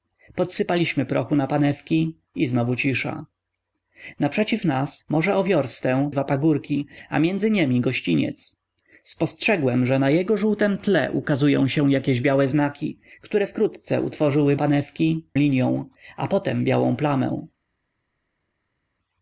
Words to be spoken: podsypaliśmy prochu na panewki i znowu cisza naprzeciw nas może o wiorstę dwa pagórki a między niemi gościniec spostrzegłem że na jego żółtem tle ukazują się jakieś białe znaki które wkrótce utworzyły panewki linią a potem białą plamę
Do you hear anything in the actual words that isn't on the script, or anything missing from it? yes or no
no